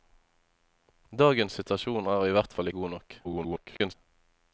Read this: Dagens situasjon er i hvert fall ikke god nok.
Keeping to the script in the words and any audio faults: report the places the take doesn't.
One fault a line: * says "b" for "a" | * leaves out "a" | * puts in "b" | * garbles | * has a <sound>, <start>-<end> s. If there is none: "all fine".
* leaves out "ikke"
* garbles